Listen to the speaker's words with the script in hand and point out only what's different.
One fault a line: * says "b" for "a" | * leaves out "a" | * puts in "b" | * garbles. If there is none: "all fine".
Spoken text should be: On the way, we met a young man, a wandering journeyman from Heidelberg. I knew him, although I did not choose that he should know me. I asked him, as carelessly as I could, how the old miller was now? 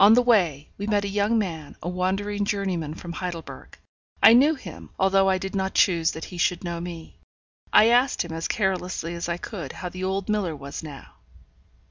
all fine